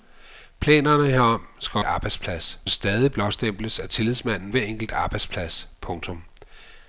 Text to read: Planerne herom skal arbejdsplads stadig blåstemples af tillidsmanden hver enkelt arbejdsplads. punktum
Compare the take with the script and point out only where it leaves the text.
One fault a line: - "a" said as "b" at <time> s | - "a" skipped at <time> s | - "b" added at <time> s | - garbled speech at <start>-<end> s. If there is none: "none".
none